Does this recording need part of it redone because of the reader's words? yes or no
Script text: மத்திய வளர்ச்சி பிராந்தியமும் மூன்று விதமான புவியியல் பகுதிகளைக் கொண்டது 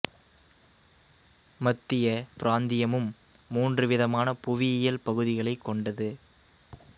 yes